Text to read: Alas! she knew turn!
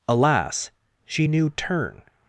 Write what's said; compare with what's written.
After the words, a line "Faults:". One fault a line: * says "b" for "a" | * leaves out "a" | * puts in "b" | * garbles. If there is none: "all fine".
Alas! she knew turn!
Faults:
all fine